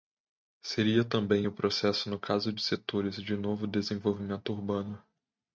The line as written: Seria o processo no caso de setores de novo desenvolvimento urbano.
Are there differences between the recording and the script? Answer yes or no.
yes